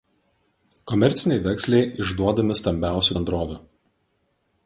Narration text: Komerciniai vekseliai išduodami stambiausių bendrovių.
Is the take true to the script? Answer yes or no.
yes